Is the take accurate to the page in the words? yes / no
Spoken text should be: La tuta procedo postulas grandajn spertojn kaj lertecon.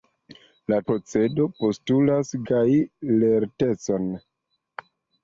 no